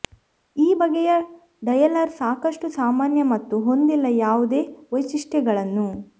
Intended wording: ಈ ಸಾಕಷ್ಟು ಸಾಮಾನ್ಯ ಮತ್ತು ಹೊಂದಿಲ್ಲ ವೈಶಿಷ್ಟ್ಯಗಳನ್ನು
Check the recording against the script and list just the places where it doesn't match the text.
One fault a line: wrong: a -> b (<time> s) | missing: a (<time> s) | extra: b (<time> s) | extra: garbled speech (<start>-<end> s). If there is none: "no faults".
extra: ಬಗೆಯ ಡಯಲರ್ (0.8 s)
extra: ಯಾವುದೇ (4.2 s)